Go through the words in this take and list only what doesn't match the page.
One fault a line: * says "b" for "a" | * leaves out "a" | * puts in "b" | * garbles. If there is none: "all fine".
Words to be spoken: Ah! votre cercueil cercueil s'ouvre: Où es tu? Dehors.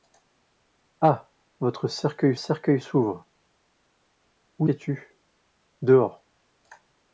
all fine